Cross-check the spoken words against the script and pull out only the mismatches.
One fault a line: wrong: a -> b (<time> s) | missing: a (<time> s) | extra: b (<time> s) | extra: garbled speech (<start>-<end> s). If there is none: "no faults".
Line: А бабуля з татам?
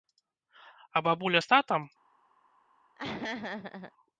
no faults